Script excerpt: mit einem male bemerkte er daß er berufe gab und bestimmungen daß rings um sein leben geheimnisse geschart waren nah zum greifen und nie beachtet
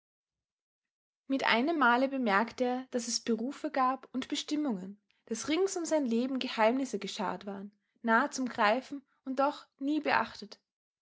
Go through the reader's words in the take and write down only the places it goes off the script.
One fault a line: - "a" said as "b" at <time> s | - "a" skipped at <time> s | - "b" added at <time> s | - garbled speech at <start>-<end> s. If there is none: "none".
- "er" said as "es" at 3.1 s
- "doch" added at 9.4 s